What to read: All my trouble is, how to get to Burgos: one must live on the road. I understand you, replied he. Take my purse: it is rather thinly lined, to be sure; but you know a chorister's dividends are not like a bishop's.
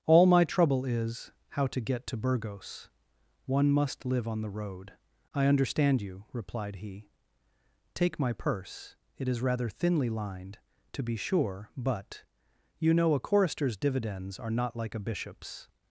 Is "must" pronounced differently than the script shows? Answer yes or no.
no